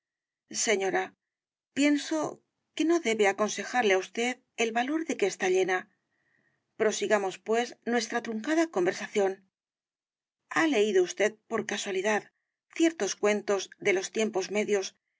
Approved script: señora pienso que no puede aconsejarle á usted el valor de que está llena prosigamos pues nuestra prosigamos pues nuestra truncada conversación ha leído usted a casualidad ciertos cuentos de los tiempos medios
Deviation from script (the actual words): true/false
true